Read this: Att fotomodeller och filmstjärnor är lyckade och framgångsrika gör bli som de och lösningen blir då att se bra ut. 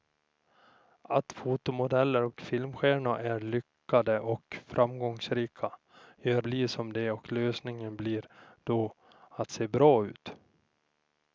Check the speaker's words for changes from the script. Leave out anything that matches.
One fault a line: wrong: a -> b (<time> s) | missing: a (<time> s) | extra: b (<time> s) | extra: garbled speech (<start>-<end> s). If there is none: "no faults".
no faults